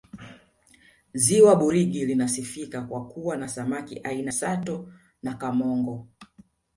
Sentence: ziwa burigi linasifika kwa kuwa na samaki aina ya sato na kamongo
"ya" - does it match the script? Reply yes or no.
no